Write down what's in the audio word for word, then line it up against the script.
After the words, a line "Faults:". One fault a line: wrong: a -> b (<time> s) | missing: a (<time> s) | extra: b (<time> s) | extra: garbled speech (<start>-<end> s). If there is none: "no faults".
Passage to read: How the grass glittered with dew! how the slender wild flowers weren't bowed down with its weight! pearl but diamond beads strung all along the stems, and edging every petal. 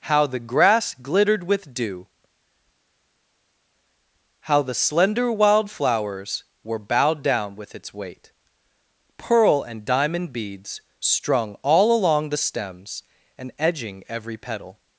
How the grass glittered with dew! how the slender wild flowers were bowed down with its weight! pearl and diamond beads strung all along the stems, and edging every petal.
Faults:
wrong: weren't -> were (6.6 s)
wrong: but -> and (9.6 s)